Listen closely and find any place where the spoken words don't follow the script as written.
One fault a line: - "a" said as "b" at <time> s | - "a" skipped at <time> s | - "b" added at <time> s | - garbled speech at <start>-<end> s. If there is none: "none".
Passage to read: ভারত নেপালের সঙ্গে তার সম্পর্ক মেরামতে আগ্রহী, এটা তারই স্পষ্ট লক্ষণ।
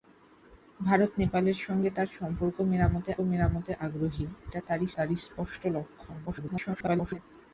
- "মেরামতে" added at 3.2 s
- "তারই" added at 5.0 s
- garbled speech at 6.3-7.2 s